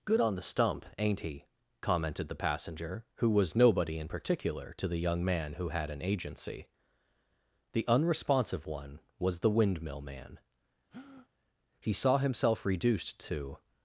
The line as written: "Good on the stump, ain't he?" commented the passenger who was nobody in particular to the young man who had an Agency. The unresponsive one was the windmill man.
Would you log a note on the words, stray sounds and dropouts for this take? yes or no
yes